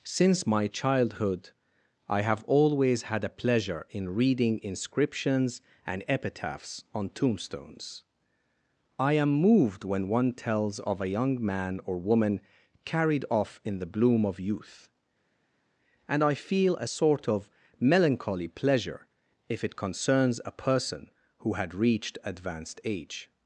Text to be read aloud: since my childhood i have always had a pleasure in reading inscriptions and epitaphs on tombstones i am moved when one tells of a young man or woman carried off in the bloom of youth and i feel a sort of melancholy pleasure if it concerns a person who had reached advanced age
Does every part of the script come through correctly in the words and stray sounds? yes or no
yes